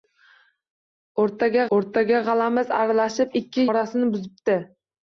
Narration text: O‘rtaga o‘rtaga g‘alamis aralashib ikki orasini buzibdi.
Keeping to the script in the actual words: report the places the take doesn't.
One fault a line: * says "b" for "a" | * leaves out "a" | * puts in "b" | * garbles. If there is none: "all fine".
all fine